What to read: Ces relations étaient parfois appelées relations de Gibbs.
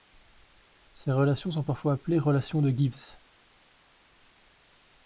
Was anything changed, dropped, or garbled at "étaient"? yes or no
yes